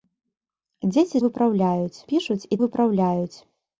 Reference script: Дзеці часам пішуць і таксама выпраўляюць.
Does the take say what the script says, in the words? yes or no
no